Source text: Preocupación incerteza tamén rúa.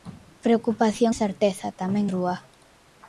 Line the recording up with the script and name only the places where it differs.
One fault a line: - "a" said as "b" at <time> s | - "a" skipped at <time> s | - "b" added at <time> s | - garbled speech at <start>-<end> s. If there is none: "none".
none